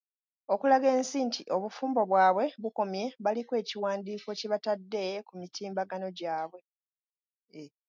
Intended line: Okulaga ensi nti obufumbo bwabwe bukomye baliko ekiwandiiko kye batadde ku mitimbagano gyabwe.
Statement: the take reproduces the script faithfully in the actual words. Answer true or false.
true